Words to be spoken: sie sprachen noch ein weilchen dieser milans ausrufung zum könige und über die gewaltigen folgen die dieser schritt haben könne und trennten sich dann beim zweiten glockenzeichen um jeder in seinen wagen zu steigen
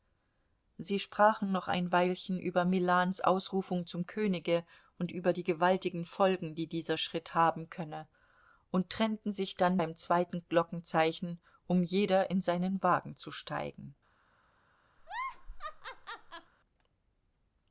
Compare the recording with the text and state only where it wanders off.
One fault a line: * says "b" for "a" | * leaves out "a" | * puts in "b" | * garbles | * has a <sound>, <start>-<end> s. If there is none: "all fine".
* says "über" for "dieser"
* has a laugh, 15.0-16.5 s